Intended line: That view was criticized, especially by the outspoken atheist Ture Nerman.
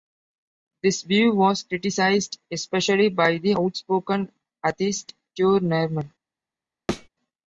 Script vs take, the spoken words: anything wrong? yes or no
yes